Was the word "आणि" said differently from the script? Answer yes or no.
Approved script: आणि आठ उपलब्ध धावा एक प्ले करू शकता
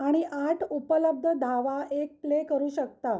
no